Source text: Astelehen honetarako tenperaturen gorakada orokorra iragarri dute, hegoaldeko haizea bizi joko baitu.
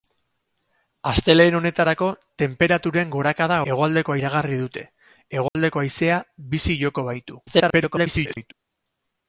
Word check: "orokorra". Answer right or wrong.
wrong